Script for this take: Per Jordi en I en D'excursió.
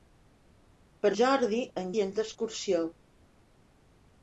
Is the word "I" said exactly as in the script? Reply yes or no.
yes